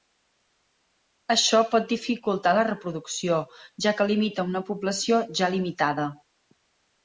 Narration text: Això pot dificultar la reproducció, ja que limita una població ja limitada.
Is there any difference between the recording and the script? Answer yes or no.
no